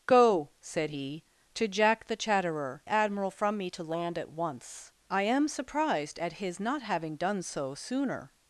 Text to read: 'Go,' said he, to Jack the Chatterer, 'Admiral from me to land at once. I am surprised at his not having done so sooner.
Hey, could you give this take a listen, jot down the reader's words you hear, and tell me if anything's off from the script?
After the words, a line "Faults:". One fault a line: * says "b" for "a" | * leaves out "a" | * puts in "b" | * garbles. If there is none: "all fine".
'Go,' said he, to Jack the Chatterer, 'Admiral from me to land at once. I am surprised at his not having done so sooner.
Faults:
all fine